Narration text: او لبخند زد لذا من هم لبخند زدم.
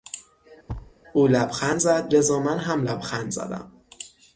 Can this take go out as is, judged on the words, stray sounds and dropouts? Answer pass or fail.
fail